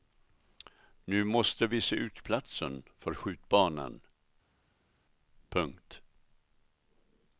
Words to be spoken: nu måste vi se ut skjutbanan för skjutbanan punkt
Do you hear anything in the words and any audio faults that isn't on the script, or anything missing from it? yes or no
yes